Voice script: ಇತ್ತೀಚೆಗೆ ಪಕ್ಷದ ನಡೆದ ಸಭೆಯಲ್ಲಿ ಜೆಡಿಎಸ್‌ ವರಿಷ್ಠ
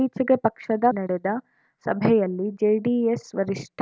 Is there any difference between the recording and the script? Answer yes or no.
no